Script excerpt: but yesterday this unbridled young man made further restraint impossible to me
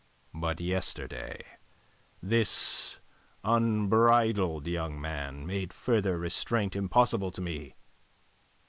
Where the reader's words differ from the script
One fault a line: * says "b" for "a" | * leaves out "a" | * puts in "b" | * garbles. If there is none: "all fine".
all fine